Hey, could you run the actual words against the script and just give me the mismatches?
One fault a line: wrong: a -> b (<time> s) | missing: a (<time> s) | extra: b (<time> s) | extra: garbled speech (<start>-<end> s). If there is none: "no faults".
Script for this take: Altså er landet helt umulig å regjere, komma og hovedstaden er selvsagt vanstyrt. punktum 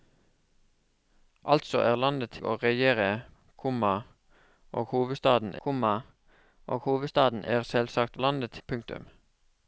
missing: helt umulig (2.4 s)
extra: komma og hovedstaden (5.6 s)
wrong: vanstyrt -> landet (8.2 s)